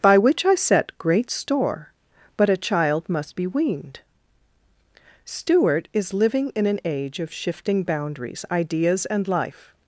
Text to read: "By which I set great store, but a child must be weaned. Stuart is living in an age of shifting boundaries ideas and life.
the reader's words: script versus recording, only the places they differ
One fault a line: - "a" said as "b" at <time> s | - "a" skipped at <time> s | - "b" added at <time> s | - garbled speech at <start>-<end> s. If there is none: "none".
none